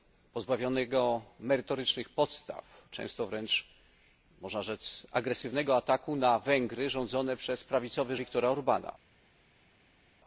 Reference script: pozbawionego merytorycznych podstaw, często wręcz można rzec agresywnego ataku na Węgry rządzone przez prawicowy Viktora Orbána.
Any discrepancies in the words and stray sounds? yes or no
no